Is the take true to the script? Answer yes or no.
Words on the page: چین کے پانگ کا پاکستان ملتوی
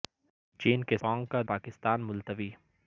yes